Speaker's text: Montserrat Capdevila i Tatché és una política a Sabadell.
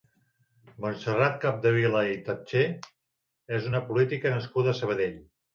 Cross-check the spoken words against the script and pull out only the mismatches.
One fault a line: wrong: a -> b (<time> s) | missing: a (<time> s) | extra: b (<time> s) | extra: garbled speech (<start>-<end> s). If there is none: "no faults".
extra: nascuda (4.4 s)